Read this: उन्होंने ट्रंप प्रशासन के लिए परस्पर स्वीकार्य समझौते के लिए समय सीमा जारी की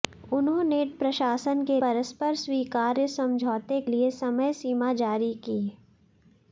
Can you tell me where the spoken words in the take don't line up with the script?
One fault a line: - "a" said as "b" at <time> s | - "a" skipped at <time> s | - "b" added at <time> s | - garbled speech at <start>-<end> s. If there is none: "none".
- "ट्रंप" skipped at 0.9 s
- "लिए" skipped at 1.8 s
- "के" skipped at 3.8 s